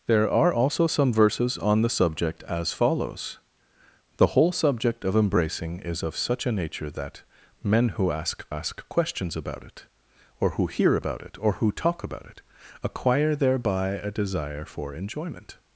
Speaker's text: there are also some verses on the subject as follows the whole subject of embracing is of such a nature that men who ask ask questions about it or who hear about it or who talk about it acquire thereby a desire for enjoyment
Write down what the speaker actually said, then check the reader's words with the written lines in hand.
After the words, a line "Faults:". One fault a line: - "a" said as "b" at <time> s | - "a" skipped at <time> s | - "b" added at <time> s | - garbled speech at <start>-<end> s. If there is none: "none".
there are also some verses on the subject as follows the whole subject of embracing is of such a nature that men who ask ask questions about it or who hear about it or who talk about it acquire thereby a desire for enjoyment
Faults:
none